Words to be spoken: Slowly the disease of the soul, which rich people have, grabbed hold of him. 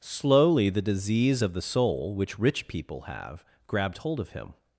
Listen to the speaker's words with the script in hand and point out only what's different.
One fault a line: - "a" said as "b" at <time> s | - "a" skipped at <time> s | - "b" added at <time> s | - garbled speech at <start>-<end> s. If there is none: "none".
none